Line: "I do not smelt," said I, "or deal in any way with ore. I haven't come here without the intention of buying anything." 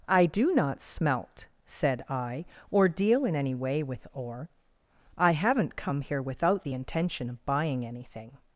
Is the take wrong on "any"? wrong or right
right